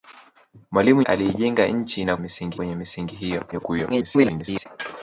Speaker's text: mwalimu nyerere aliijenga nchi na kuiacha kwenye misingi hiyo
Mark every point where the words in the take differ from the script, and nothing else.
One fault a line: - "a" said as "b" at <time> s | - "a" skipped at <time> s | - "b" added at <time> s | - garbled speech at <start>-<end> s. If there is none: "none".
- "nyerere" skipped at 1.0 s
- "kuiacha" said as "misingi" at 2.2 s
- garbled speech at 3.5-4.7 s